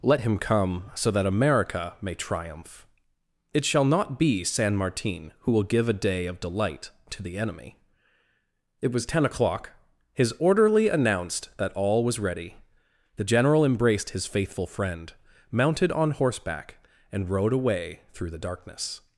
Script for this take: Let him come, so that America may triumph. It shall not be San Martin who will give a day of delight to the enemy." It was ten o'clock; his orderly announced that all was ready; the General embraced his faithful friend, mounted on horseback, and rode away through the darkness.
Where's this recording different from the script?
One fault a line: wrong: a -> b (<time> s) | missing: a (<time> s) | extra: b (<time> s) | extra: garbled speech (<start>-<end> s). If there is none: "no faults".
no faults